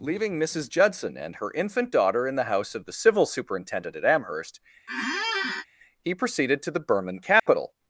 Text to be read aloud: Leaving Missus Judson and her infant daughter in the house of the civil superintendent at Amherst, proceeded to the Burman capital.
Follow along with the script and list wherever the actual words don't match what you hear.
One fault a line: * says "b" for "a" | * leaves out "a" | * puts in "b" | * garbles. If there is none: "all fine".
* puts in "he"